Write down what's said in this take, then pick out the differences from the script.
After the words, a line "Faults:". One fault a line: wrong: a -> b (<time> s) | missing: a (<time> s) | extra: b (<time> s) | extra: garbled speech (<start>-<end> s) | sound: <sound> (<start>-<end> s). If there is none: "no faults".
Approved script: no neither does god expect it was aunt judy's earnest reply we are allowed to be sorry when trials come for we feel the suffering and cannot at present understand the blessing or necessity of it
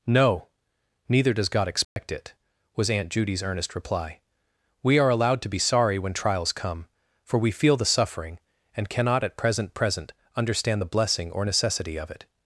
no neither does god expect it was aunt judy's earnest reply we are allowed to be sorry when trials come for we feel the suffering and cannot at present present understand the blessing or necessity of it
Faults:
sound: dropout (1.8-2.0 s)
extra: present (9.8 s)